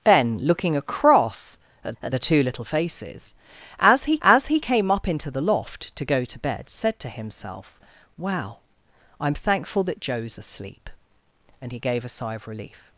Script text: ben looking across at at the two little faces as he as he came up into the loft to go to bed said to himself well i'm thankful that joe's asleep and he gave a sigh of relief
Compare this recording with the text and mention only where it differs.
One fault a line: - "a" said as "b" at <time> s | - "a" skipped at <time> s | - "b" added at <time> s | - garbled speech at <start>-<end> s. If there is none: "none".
none